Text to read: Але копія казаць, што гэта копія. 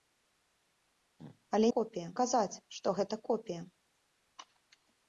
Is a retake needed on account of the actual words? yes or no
no